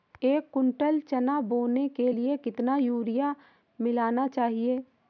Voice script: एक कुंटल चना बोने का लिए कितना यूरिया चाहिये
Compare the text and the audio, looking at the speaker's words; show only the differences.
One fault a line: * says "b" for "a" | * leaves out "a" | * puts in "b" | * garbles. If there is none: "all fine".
* says "के" for "का"
* puts in "मिलाना"